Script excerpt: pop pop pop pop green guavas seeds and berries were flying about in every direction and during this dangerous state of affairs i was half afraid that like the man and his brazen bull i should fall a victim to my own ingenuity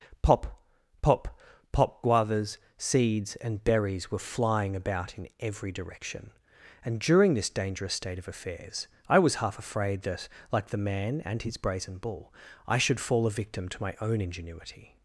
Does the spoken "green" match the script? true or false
false